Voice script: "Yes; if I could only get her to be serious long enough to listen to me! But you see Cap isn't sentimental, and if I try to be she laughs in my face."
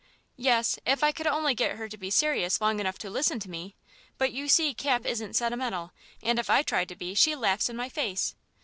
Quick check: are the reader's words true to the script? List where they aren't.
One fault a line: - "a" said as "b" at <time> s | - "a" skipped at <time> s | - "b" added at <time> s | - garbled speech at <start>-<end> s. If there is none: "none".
none